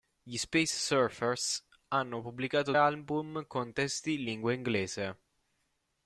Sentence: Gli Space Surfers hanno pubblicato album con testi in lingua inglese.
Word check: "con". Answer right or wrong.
right